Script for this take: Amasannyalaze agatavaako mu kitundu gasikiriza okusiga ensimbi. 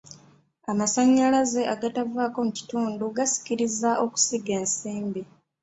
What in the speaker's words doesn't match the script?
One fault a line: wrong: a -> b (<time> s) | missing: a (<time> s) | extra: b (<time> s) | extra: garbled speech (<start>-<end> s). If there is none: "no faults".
no faults